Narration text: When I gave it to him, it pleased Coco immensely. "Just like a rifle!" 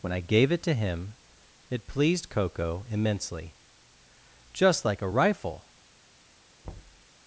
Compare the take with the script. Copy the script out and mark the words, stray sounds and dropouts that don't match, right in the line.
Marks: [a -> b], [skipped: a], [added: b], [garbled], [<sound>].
When I gave it to him, it pleased Coco immensely. "Just like a rifle!" [thud]